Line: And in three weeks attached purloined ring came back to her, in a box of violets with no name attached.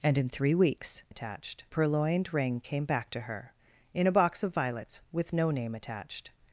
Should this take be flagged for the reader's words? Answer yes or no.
no